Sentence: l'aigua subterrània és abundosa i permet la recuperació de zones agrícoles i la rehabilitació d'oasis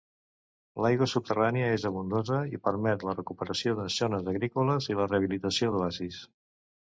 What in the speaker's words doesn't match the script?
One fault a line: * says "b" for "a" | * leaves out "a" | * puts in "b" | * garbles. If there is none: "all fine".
all fine